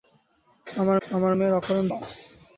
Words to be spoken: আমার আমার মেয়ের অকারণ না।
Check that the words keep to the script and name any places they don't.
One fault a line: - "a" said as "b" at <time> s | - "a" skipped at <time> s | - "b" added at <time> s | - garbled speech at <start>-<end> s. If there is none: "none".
none